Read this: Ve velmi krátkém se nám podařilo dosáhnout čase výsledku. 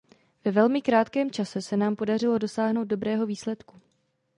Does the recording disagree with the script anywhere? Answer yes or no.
yes